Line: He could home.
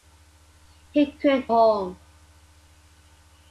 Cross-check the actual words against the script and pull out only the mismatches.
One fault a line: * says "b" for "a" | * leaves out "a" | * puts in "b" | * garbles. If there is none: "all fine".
all fine